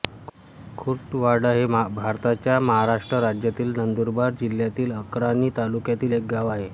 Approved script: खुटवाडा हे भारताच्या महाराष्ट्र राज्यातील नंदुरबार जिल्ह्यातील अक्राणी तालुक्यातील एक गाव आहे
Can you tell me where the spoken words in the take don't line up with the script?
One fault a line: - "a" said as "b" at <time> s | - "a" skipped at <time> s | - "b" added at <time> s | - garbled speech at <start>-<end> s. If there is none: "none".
none